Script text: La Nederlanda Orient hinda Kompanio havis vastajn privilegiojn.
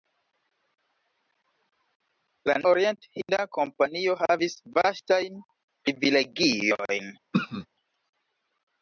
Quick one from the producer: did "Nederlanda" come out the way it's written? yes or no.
no